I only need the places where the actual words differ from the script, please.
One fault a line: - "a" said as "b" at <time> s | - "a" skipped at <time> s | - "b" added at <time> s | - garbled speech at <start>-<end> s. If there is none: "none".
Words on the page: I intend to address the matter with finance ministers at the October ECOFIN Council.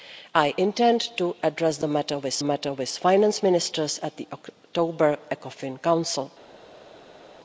- "matter with" added at 2.4 s